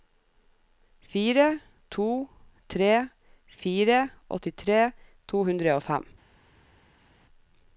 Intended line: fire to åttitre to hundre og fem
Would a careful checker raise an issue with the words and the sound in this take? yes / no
yes